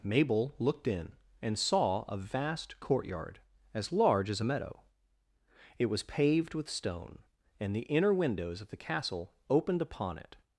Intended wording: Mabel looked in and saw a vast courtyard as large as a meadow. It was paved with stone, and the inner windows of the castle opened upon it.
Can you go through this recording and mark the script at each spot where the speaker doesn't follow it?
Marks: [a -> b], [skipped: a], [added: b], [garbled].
Mabel looked in and saw a vast courtyard as large as a meadow. It was paved with stone, and the inner windows of the castle opened upon it.